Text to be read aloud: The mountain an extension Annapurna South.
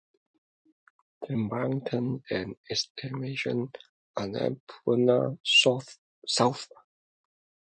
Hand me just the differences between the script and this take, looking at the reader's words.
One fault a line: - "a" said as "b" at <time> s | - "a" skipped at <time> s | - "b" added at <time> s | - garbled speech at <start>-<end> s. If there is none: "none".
none